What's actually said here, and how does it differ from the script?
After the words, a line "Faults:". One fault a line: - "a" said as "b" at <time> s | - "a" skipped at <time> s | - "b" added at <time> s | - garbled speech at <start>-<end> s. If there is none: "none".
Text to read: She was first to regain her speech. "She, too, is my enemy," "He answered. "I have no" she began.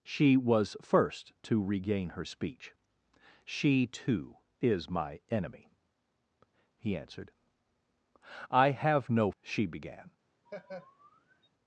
She was first to regain her speech. "She, too, is my enemy," "He answered. "I have no" she began.
Faults:
none